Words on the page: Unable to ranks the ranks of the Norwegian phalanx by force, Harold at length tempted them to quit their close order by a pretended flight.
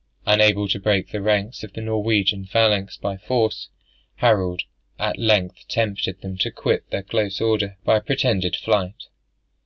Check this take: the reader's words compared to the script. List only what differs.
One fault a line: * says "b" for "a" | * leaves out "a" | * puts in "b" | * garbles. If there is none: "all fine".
* says "break" for "ranks"